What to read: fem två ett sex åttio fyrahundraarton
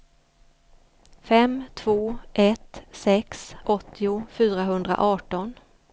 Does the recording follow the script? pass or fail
pass